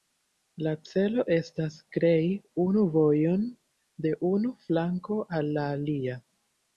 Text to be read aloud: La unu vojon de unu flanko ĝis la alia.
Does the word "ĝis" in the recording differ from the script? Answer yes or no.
yes